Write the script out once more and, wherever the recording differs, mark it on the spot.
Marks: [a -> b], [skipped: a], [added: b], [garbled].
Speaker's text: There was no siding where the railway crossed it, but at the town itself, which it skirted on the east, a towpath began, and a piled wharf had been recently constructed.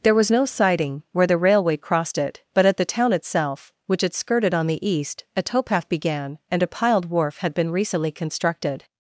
There was no siding where the railway crossed it, but at the town itself, which it skirted on the east, a towpath began, and a piled wharf had been recently constructed.